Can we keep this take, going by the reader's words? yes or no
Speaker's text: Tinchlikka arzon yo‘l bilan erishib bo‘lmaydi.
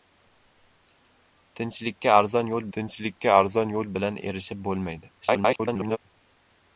no